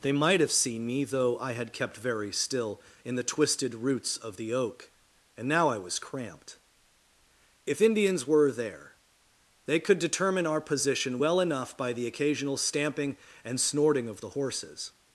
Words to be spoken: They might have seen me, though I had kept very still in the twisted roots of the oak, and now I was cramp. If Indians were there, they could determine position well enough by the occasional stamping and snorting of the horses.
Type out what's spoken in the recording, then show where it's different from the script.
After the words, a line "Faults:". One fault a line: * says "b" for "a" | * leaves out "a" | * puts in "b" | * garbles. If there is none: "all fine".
They might have seen me, though I had kept very still in the twisted roots of the oak, and now I was cramped. If Indians were there, they could determine our position well enough by the occasional stamping and snorting of the horses.
Faults:
* says "cramped" for "cramp"
* puts in "our"